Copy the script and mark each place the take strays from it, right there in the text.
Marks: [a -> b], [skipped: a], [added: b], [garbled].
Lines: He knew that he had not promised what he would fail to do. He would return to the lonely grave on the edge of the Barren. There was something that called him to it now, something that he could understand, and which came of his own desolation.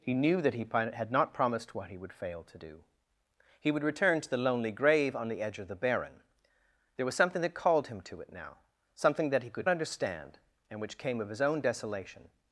He knew that he had not promised what he would fail to do. He would return to the lonely grave on the edge of the Barren. There was something that called him to it now, something that he could understand, and which came of his own desolation.